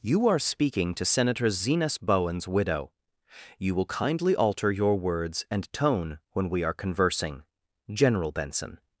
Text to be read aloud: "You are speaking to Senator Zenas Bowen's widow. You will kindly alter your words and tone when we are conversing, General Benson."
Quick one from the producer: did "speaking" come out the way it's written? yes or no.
yes